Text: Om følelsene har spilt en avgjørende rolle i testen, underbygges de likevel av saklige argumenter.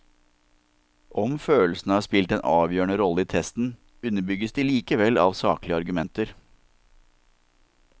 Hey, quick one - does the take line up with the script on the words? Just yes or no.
yes